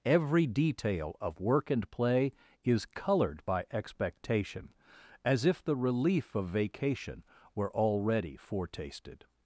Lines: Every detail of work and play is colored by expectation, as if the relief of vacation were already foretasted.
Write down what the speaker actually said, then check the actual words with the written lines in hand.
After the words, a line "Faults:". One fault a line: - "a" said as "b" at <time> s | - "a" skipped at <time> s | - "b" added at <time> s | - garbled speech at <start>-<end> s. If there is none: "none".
Every detail of work and play is colored by expectation, as if the relief of vacation were already foretasted.
Faults:
none